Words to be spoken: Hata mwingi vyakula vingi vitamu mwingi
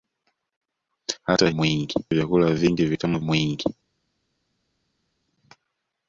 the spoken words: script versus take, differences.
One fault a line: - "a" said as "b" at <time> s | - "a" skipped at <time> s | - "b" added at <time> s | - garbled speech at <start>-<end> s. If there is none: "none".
none